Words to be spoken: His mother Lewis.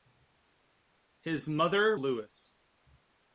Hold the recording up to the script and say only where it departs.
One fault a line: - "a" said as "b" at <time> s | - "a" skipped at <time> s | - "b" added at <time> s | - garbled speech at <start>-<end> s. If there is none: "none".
none